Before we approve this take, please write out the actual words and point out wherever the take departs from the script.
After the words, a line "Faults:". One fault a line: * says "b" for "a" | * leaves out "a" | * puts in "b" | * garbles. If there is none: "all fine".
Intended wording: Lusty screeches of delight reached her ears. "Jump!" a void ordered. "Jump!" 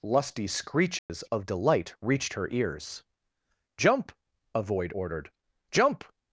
Lusty screeches of delight reached her ears. "Jump!" a void ordered. "Jump!"
Faults:
all fine